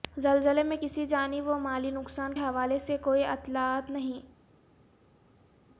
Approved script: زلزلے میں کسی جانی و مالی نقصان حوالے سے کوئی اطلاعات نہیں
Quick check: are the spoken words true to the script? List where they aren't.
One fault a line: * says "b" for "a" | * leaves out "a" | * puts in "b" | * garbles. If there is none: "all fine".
all fine